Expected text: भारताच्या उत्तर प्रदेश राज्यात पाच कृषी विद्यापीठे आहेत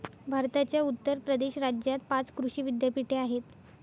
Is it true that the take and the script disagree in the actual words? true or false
false